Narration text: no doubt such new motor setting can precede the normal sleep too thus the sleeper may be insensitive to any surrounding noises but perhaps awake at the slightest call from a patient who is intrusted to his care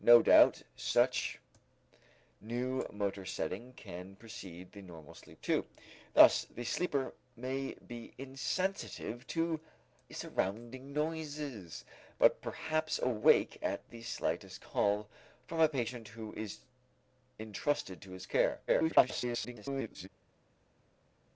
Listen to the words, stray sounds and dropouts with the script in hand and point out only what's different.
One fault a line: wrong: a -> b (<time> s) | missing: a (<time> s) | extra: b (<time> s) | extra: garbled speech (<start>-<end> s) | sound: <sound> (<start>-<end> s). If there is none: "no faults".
missing: any (9.6 s)
extra: garbled speech (18.7-20.1 s)